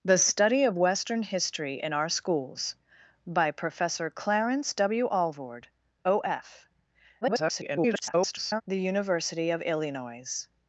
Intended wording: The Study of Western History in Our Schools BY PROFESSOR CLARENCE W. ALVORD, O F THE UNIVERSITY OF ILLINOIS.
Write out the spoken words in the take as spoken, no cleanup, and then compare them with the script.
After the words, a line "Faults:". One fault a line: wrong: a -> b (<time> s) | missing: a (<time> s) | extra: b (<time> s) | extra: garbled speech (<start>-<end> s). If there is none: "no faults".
The Study of Western History in Our Schools BY PROFESSOR CLARENCE W. ALVORD, O F [garbled] THE UNIVERSITY OF ILLINOIS.
Faults:
extra: garbled speech (7.2-8.6 s)